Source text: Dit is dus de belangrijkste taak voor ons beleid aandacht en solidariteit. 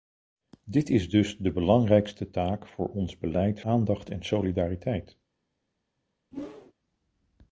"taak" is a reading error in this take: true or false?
false